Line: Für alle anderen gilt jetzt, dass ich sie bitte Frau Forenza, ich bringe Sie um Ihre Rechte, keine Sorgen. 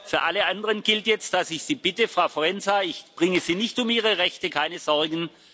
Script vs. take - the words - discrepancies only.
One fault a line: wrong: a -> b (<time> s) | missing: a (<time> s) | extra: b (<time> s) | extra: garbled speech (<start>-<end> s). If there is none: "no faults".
extra: nicht (3.5 s)